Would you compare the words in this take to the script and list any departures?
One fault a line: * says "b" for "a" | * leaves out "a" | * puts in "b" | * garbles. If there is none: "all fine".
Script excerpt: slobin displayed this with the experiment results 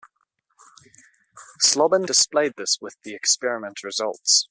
all fine